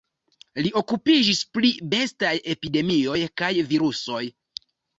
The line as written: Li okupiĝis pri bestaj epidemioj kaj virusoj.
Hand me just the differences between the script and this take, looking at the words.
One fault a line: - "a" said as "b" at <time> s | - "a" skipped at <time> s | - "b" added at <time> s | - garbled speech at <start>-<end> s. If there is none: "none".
none